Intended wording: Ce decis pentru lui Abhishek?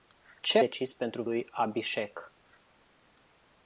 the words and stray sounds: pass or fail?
pass